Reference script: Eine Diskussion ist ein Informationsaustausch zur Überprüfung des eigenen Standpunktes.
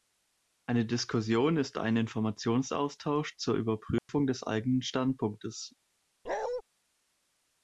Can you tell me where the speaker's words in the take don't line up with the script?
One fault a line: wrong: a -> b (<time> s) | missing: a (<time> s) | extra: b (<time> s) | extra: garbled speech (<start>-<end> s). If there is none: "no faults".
no faults